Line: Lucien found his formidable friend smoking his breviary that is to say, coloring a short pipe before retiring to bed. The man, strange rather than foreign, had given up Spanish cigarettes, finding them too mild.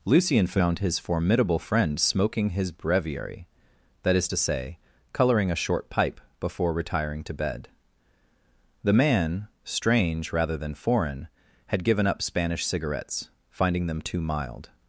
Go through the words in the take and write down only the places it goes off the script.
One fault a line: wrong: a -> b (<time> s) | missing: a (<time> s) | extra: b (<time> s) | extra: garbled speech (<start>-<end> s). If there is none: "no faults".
no faults